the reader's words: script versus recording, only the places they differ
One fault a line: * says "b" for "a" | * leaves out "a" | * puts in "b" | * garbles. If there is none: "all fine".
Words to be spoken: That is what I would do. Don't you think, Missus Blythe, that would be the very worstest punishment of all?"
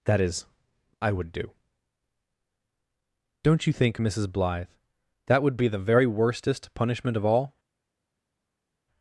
* leaves out "what"